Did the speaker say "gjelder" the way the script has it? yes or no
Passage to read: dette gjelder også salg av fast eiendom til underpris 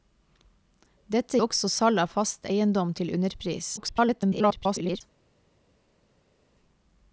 no